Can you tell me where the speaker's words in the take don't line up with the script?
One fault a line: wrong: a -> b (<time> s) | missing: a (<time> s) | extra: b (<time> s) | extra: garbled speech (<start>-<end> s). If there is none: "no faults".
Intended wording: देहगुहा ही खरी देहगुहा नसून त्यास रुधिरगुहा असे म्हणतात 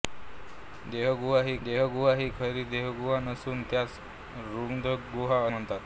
extra: देहगुहा ही (1.6 s)
missing: असे (5.4 s)